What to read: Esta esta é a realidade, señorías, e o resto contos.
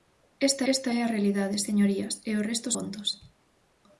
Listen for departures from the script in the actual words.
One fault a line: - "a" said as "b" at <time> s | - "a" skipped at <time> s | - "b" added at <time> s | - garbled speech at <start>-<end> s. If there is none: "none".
none